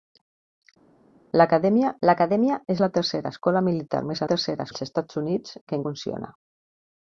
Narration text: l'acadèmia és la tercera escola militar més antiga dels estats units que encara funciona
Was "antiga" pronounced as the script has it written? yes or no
no